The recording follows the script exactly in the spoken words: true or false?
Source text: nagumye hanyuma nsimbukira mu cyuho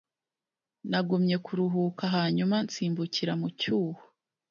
false